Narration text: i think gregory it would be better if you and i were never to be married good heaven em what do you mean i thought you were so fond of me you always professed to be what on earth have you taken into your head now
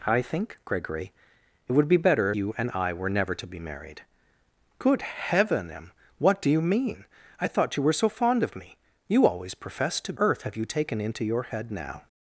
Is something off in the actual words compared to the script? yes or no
yes